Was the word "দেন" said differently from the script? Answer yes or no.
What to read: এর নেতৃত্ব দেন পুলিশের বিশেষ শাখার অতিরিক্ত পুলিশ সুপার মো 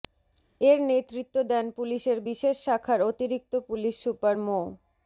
no